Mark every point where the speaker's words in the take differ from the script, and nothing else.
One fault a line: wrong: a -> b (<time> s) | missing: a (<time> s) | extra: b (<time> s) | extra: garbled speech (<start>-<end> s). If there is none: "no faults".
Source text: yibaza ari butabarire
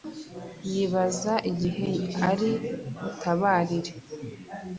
extra: igihe (1.5 s)